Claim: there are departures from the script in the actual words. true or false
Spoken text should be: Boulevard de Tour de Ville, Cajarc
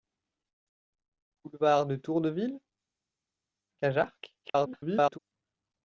true